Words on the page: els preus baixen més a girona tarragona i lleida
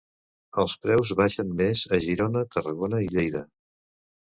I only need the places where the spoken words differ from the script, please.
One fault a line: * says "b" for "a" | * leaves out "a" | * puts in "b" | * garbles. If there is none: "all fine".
all fine